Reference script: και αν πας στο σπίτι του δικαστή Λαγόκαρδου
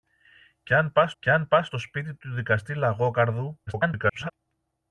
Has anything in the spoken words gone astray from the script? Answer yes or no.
yes